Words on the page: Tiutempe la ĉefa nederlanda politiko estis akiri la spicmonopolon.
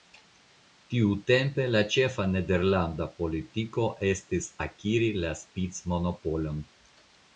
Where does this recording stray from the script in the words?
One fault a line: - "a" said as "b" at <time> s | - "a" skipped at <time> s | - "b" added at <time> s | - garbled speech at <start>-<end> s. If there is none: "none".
none